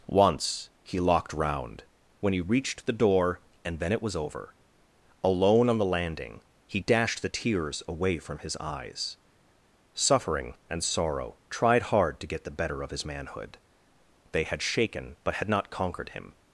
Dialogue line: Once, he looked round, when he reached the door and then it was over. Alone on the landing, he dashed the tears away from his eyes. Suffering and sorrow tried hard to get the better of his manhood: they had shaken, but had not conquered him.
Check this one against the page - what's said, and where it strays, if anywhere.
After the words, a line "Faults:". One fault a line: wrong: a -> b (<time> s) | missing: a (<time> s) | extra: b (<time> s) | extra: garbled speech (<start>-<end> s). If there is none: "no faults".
Once, he locked round, when he reached the door and then it was over. Alone on the landing, he dashed the tears away from his eyes. Suffering and sorrow tried hard to get the better of his manhood: they had shaken, but had not conquered him.
Faults:
wrong: looked -> locked (1.0 s)